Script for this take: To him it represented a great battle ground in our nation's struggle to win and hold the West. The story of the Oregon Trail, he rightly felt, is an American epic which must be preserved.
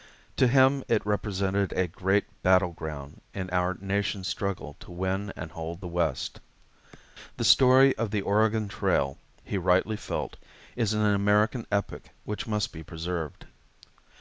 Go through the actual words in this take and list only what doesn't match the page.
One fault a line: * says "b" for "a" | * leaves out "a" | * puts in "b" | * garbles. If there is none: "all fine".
all fine